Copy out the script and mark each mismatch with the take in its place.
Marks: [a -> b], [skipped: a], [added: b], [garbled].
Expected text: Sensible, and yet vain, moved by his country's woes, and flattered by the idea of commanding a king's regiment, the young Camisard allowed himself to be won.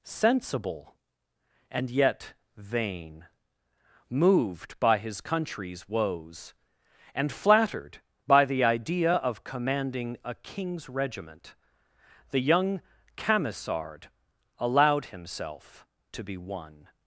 Sensible, and yet vain, moved by his country's woes, and flattered by the idea of commanding a king's regiment, the young Camisard allowed himself to be won.